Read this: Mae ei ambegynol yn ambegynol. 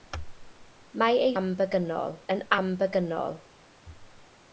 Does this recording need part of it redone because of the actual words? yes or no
no